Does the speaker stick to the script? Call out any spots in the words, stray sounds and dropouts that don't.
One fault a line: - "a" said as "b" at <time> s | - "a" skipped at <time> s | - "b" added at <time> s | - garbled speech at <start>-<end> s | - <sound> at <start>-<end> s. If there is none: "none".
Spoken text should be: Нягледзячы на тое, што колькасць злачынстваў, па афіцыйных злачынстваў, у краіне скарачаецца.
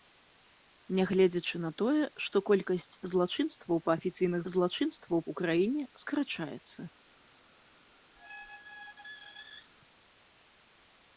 - squeak at 8.2-9.7 s